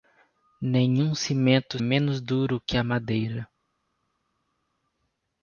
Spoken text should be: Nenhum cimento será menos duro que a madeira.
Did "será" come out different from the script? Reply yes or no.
yes